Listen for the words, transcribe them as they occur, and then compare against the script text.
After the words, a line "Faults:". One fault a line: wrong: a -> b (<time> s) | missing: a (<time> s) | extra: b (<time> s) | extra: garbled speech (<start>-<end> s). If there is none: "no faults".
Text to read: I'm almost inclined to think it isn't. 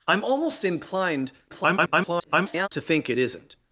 I'm almost inclined [garbled] to think it isn't.
Faults:
extra: garbled speech (1.5-2.7 s)